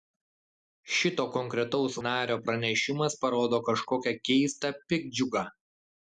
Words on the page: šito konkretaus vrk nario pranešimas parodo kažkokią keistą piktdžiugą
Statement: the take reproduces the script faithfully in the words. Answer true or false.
false